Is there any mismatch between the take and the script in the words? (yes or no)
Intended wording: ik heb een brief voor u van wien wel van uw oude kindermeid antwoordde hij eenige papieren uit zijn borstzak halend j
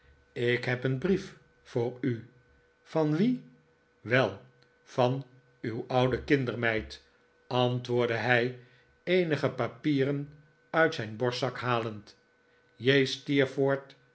no